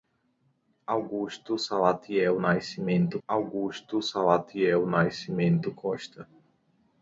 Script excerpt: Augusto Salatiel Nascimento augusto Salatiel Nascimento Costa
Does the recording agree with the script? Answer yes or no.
yes